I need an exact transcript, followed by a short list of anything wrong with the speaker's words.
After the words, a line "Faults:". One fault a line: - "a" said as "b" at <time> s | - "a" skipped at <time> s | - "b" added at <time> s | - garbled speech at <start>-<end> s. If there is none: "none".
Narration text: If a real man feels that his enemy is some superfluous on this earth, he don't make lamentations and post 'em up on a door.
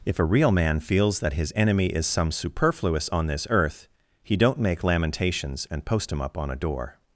If a real man feels that his enemy is some superfluous on this earth, he don't make lamentations and post 'him up on a door.
Faults:
- "em" said as "him" at 6.1 s